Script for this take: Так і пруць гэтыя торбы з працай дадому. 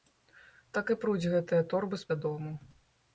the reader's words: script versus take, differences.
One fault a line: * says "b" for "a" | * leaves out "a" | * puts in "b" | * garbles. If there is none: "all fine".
* leaves out "працай"